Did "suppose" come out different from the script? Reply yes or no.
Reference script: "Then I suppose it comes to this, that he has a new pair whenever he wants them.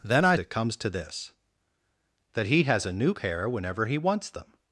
yes